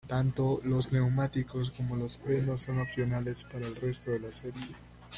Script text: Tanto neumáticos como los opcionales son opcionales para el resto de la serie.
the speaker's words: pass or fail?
fail